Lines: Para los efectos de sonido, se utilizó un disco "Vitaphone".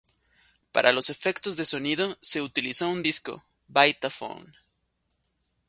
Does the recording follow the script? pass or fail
pass